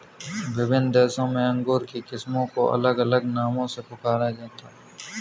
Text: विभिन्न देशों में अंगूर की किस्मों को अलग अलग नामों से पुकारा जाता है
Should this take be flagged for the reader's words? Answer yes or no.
no